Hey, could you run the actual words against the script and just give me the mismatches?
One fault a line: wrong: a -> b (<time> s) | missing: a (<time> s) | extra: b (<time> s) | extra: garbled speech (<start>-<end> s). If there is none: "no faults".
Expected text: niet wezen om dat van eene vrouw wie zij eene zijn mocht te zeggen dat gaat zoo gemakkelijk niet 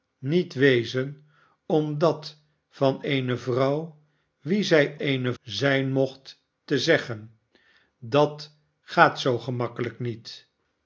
no faults